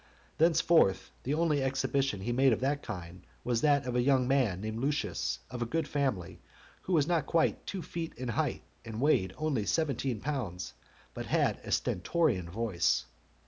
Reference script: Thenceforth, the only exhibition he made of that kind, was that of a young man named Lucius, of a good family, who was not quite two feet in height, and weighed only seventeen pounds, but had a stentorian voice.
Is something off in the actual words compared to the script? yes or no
no